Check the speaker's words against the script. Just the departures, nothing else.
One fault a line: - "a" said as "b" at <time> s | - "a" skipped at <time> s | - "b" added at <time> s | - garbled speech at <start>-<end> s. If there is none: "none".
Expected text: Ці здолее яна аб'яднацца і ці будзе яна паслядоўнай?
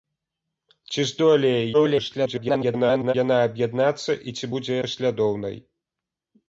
- garbled speech at 1.7-3.1 s
- "яна" skipped at 4.7 s